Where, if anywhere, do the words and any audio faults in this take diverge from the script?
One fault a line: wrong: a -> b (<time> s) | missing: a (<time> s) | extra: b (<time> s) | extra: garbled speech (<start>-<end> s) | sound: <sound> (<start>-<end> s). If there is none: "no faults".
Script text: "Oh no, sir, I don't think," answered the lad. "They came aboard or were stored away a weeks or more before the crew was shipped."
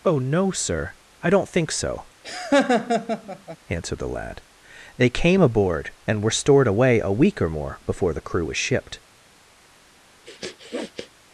extra: so (1.7 s)
sound: laugh (2.2-3.6 s)
wrong: or -> and (6.1 s)
wrong: weeks -> week (7.1 s)
sound: sniff (10.2-11.1 s)